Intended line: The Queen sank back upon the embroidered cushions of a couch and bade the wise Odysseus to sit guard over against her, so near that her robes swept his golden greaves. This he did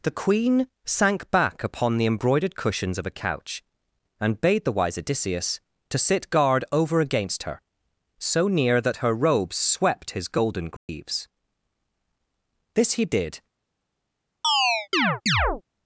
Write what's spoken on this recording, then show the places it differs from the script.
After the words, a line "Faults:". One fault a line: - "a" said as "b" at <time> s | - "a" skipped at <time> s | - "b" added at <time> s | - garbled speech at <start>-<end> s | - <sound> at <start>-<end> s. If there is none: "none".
The Queen sank back upon the embroidered cushions of a couch and bade the wise Odysseus to sit guard over against her, so near that her robes swept his golden greaves. This he did
Faults:
- dropout at 10.8-10.9 s
- chirp at 14.4-15.6 s